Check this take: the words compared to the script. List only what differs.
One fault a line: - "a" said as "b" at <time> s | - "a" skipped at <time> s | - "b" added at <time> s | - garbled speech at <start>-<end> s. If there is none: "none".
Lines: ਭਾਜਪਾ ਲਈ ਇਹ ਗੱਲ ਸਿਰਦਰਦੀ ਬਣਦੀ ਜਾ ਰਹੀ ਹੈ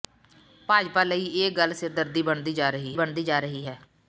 - "ਬਣਦੀ ਜਾ ਰਹੀ" added at 2.9 s